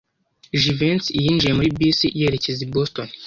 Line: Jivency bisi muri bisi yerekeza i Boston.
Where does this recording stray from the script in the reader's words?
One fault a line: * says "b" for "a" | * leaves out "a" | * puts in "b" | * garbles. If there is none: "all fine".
* says "yinjiye" for "bisi"